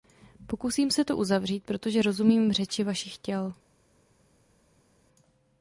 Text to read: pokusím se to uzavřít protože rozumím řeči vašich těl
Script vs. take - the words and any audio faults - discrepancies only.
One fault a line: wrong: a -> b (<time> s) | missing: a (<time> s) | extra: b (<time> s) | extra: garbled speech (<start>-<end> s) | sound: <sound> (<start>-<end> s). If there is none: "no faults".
no faults